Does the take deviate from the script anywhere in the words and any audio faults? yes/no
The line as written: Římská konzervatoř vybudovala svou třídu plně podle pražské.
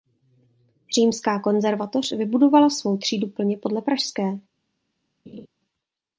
yes